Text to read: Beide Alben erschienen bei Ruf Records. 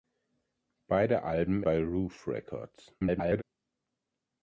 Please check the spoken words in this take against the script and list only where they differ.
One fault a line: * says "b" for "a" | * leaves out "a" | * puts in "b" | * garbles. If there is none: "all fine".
* leaves out "erschienen"
* garbles